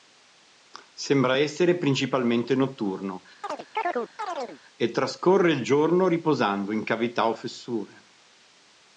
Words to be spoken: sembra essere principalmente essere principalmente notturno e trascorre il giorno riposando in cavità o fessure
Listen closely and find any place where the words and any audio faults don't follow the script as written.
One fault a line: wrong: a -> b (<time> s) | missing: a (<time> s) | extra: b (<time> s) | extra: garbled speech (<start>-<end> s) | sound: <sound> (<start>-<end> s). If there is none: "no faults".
missing: essere principalmente (2.6 s)
sound: chirp (3.4-4.6 s)